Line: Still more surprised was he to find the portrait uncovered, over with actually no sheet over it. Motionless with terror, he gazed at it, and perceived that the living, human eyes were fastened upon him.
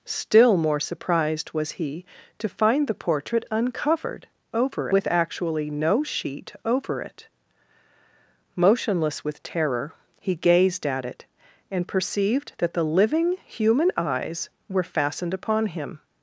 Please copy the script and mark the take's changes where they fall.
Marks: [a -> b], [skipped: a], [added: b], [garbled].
Still more surprised was he to find the portrait uncovered, over with actually no sheet over it. Motionless with terror, he gazed at it, and perceived that the living, human eyes were fastened upon him.